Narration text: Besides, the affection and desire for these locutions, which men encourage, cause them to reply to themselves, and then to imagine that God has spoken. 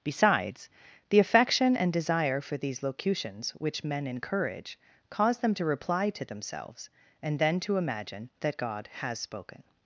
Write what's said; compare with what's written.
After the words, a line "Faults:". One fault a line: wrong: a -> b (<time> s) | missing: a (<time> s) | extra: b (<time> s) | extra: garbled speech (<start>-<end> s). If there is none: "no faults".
Besides, the affection and desire for these locutions, which men encourage, cause them to reply to themselves, and then to imagine that God has spoken.
Faults:
no faults